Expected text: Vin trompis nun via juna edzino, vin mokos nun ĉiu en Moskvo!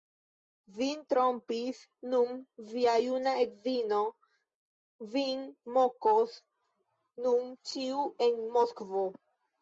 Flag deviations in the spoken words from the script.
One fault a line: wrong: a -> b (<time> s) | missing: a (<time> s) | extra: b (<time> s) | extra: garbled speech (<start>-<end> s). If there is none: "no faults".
no faults